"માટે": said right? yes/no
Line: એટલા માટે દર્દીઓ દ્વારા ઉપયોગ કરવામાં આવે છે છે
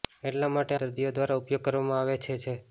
yes